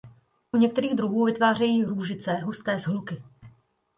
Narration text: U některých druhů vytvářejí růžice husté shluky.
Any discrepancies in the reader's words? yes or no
no